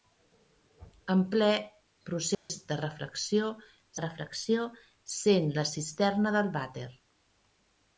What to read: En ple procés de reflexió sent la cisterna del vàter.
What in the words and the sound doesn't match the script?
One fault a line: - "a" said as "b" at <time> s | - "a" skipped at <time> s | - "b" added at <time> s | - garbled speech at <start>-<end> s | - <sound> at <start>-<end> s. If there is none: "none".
- dropout at 2.3-2.5 s
- "reflexió" added at 4.0 s